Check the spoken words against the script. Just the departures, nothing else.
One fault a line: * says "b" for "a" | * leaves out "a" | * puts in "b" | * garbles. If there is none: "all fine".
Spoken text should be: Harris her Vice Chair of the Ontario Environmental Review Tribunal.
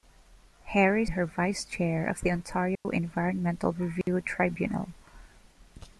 all fine